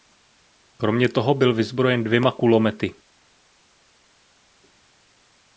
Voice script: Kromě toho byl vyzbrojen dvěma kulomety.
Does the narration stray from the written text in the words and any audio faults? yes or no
no